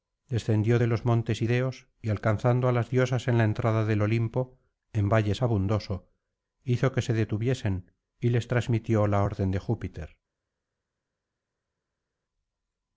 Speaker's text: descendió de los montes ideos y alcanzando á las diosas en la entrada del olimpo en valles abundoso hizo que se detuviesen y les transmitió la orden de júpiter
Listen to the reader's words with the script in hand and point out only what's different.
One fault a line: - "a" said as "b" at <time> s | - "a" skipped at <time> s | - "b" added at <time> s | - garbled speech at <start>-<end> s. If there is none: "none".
none